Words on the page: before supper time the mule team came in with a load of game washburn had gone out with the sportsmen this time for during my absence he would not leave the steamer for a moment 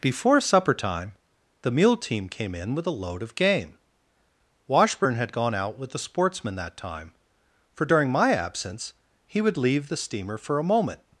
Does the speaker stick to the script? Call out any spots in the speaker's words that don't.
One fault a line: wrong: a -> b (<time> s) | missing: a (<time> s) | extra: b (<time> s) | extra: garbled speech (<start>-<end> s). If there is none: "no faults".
wrong: this -> that (6.5 s)
missing: not (9.6 s)